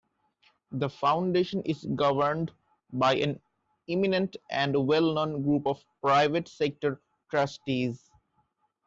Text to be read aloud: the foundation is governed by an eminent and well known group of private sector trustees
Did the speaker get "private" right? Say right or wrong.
right